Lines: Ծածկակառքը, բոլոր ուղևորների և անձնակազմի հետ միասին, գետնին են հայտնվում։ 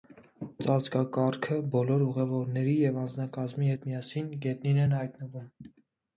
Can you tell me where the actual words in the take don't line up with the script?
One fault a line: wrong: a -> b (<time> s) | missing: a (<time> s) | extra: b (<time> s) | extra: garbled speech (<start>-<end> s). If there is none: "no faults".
no faults